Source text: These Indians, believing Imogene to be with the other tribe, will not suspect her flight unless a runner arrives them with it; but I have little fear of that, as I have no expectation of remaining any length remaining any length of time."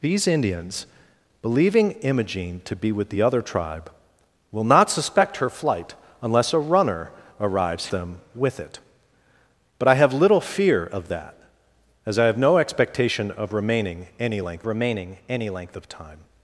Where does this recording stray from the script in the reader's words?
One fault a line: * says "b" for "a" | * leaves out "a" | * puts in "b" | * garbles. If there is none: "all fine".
all fine